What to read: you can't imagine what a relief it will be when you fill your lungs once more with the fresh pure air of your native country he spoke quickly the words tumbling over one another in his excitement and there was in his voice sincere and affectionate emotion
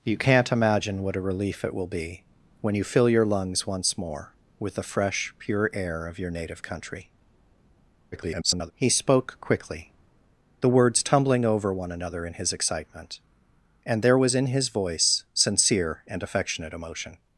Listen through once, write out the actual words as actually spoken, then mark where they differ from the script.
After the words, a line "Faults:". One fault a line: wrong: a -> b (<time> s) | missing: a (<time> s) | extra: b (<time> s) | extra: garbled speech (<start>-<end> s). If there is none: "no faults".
you can't imagine what a relief it will be when you fill your lungs once more with the fresh pure air of your native country [garbled] he spoke quickly the words tumbling over one another in his excitement and there was in his voice sincere and affectionate emotion
Faults:
extra: garbled speech (8.1-8.7 s)